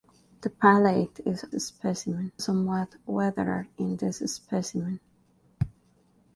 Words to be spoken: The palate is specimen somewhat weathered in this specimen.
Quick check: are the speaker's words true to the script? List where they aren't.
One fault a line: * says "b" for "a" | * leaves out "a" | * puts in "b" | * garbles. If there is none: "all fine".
all fine